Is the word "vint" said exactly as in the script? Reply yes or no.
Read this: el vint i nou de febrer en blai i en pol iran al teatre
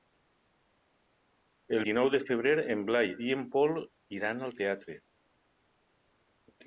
no